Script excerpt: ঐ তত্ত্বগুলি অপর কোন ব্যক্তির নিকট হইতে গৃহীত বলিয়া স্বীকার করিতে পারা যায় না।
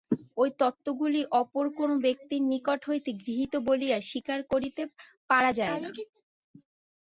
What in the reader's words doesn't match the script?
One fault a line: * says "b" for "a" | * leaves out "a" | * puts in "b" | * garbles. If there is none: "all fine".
all fine